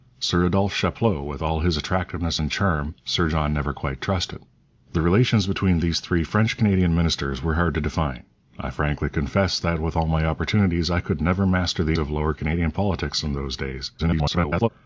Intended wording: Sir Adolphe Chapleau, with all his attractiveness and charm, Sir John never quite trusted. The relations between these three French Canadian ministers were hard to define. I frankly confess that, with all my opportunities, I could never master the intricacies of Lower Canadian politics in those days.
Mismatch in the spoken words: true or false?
true